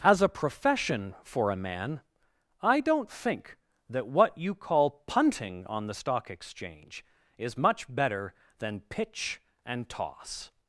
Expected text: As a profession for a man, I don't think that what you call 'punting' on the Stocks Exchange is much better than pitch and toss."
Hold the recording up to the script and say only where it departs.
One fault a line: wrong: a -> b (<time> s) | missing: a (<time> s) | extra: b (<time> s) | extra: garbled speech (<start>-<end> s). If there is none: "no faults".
wrong: Stocks -> Stock (5.9 s)